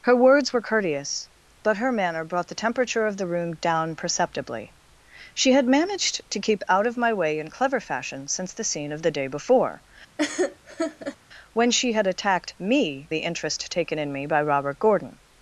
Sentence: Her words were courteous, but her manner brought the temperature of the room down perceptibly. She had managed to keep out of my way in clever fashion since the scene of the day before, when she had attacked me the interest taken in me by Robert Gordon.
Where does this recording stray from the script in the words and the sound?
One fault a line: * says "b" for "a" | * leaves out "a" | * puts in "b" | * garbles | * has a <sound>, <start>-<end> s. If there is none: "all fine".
* has a laugh, 10.2-11.2 s